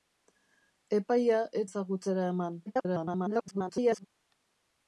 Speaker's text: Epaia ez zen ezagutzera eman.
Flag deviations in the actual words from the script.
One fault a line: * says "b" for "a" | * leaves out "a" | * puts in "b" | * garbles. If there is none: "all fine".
* leaves out "zen"
* garbles